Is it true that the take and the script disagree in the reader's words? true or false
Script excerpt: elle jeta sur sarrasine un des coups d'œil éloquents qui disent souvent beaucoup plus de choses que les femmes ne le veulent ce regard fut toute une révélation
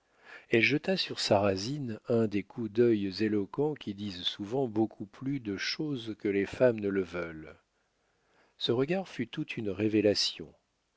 false